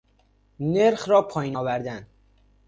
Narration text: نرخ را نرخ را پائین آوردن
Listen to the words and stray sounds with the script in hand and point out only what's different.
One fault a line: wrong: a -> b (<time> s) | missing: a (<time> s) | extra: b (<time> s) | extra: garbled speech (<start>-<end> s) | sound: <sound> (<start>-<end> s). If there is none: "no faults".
missing: نرخ را (1.2 s)